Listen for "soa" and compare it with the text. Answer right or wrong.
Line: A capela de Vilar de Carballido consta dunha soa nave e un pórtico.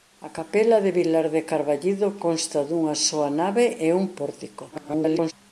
right